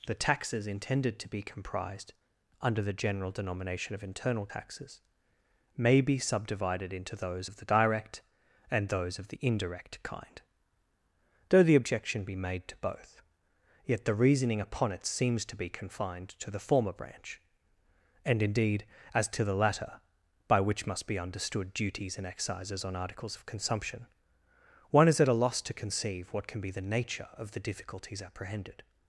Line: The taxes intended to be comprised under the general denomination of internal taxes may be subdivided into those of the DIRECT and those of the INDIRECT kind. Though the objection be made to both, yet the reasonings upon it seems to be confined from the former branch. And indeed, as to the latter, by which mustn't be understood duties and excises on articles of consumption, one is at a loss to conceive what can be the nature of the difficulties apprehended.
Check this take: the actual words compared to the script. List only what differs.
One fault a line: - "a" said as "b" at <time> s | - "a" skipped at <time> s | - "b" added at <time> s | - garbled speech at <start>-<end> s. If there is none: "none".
- "reasonings" said as "reasoning" at 14.1 s
- "from" said as "to" at 16.4 s
- "mustn't" said as "must" at 20.9 s